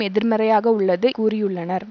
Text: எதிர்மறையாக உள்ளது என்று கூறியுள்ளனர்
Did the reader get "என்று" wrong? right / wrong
wrong